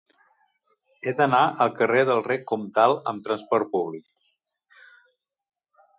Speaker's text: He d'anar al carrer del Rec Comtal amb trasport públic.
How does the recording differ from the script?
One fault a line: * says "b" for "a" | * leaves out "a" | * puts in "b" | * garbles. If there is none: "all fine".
all fine